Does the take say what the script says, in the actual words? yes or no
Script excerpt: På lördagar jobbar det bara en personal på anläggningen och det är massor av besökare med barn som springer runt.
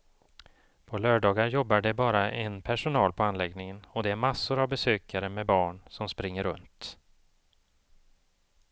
yes